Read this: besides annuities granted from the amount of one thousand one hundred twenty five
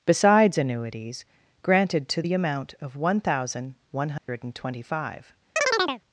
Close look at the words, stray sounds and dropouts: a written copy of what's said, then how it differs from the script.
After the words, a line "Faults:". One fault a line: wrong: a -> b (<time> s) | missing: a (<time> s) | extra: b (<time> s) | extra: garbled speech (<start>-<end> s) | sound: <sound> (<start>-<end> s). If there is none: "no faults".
besides annuities granted to the amount of one thousand one hundred twenty five
Faults:
wrong: from -> to (2.1 s)
sound: dropout (4.2-4.3 s)
sound: chirp (5.6-6.0 s)